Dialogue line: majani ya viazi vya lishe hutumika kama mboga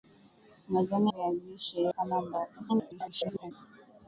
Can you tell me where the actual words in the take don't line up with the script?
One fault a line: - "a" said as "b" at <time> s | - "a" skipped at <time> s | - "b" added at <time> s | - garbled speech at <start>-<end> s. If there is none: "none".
- "ya viazi" skipped at 1.1 s
- "hutumika" skipped at 1.9 s
- garbled speech at 2.7-3.5 s